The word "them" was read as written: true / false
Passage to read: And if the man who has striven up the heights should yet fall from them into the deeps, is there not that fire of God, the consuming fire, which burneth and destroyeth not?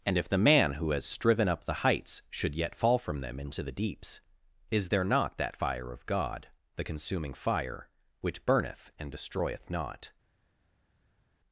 true